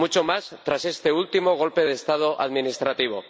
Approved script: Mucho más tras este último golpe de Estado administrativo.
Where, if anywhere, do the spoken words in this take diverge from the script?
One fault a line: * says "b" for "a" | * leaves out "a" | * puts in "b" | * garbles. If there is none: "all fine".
all fine